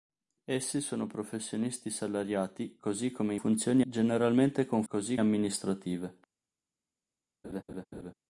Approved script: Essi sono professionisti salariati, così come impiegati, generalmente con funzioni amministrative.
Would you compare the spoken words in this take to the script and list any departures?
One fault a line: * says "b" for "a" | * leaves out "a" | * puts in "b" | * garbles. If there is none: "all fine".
* says "funzioni" for "impiegati"
* says "così" for "funzioni"